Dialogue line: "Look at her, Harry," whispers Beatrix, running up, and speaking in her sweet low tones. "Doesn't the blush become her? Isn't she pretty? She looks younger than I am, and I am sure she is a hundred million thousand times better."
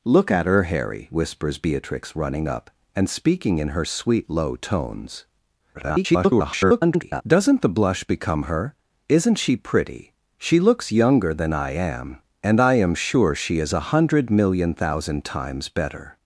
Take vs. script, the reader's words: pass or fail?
fail